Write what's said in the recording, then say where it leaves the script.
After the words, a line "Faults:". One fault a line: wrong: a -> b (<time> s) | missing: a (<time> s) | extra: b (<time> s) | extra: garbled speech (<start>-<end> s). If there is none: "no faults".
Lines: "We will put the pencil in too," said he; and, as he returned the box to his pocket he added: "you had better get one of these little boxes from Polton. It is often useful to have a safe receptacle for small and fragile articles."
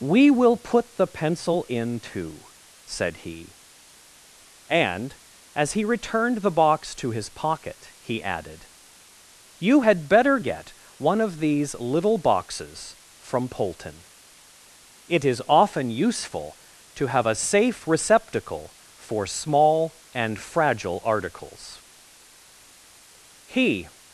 "We will put the pencil in too," said he; and, as he returned the box to his pocket he added: "you had better get one of these little boxes from Polton. It is often useful to have a safe receptacle for small and fragile articles." He
Faults:
extra: He (23.5 s)